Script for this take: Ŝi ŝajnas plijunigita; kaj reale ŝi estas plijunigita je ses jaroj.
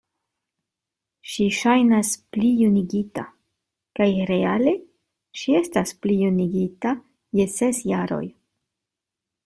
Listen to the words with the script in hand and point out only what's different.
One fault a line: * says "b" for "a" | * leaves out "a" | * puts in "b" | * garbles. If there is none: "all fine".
all fine